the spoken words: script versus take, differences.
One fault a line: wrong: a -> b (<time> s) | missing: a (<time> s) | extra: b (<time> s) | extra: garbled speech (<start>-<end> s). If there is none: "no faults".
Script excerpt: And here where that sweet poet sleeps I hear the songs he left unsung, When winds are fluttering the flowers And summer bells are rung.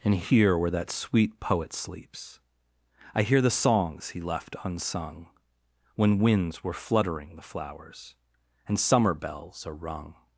wrong: are -> were (6.6 s)